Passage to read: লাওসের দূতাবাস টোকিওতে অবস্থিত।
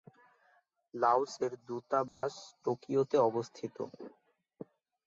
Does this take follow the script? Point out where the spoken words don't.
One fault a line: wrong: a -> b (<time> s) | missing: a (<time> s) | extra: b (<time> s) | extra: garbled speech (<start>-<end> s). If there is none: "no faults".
no faults